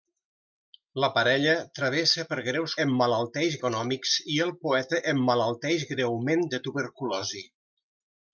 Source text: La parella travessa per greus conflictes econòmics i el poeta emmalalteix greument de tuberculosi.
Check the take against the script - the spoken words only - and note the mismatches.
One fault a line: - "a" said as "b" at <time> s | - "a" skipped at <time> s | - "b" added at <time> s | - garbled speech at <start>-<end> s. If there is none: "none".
- "conflictes" said as "emmalalteix" at 2.9 s